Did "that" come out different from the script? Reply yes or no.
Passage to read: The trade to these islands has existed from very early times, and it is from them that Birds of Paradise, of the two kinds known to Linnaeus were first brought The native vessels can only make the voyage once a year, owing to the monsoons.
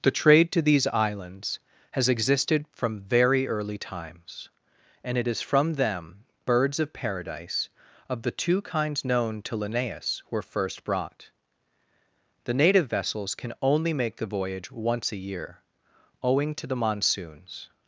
yes